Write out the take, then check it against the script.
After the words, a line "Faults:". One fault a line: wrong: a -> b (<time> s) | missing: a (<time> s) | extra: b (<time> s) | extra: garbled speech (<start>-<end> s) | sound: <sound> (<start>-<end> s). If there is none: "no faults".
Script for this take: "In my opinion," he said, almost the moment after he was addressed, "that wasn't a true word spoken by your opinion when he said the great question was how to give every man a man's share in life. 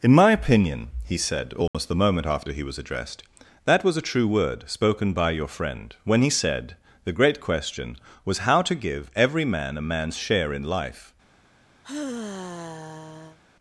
"In my opinion," he said, almost the moment after he was addressed, "that was a true word spoken by your friend when he said the great question was how to give every man a man's share in life.
Faults:
sound: dropout (1.7-1.7 s)
wrong: wasn't -> was (3.8 s)
wrong: opinion -> friend (5.5 s)
sound: sigh (11.8-13.4 s)